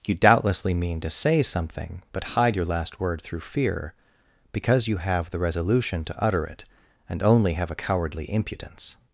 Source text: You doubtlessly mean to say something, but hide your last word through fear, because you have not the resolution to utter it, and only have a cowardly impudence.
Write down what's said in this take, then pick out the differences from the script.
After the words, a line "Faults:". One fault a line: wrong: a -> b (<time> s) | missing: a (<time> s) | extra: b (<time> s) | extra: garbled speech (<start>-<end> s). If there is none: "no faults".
You doubtlessly mean to say something, but hide your last word through fear, because you have the resolution to utter it, and only have a cowardly impudence.
Faults:
missing: not (5.3 s)